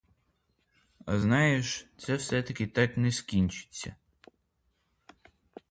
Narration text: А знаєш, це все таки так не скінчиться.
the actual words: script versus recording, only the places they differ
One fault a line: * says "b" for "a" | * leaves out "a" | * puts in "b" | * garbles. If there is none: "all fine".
all fine